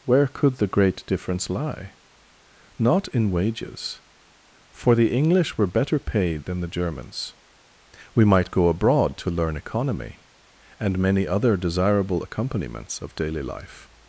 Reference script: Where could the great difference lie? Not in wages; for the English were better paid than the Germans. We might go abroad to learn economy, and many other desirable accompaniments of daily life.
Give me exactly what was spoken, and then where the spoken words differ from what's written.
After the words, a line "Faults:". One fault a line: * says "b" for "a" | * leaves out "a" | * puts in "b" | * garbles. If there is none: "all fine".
Where could the great difference lie? Not in wages; for the English were better paid than the Germans. We might go abroad to learn economy, and many other desirable accompaniments of daily life.
Faults:
all fine